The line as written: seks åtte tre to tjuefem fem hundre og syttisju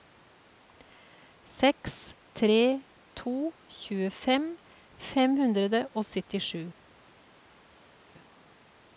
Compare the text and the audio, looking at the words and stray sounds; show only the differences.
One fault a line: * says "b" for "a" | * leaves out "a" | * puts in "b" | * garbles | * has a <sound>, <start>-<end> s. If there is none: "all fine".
* leaves out "åtte"